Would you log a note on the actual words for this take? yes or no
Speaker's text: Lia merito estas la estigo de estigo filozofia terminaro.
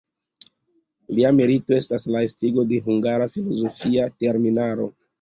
yes